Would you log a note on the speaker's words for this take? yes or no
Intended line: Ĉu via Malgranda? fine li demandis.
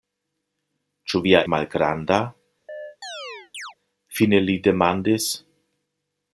no